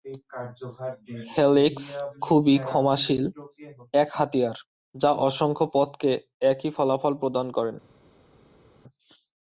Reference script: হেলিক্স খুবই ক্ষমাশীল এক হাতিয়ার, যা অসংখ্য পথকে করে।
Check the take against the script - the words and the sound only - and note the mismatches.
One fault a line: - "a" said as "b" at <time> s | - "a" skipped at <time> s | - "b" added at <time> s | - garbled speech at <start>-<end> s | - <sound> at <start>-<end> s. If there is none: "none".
- "একই ফলাফল প্রদান" added at 6.5 s